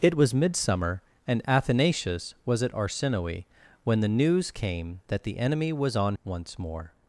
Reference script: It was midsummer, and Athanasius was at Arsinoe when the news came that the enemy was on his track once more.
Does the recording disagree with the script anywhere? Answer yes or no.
yes